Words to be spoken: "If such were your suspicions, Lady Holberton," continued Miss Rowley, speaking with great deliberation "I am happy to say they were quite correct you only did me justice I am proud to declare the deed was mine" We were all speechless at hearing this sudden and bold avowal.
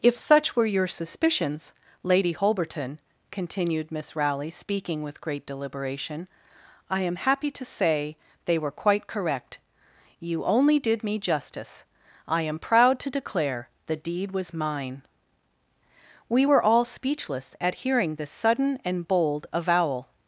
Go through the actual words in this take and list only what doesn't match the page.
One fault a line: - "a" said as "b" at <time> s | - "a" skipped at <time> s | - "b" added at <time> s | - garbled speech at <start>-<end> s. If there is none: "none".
none